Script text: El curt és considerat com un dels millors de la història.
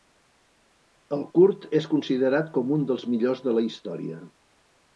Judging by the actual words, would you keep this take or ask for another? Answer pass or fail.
pass